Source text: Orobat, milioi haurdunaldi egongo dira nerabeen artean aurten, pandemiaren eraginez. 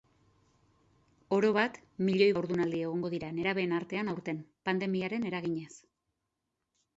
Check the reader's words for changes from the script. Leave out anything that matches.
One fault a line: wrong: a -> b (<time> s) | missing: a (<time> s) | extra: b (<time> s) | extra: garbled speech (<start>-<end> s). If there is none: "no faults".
no faults